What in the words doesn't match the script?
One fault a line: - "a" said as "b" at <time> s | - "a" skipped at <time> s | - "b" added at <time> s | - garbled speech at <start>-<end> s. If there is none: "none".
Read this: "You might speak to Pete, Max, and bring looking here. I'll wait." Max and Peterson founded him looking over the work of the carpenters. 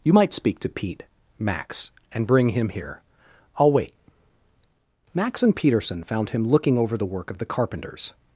- "looking" said as "him" at 2.5 s
- "founded" said as "found" at 6.0 s